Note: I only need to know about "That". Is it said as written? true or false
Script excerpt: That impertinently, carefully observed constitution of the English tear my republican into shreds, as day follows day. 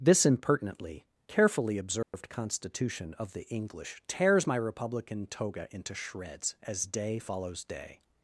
false